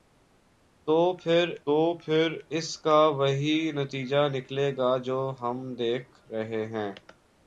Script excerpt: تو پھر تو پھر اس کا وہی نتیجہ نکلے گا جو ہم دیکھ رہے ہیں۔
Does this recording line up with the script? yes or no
yes